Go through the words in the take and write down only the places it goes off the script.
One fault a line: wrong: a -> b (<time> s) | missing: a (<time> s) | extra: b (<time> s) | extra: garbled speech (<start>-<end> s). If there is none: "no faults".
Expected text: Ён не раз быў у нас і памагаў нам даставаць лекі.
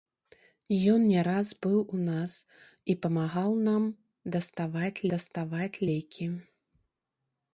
extra: даставаць (5.1 s)